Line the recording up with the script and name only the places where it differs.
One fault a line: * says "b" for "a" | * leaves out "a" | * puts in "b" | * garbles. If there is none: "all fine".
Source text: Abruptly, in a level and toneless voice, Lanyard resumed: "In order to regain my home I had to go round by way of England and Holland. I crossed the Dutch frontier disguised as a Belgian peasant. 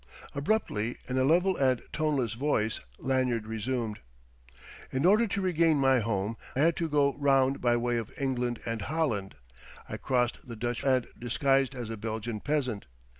* leaves out "I"
* says "and" for "frontier"